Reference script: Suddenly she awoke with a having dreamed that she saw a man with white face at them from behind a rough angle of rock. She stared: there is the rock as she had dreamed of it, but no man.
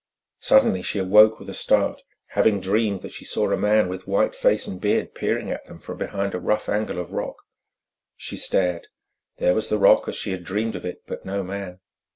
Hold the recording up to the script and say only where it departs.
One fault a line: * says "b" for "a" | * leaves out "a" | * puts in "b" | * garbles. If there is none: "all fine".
* puts in "start"
* puts in "and beard peering"
* says "was" for "is"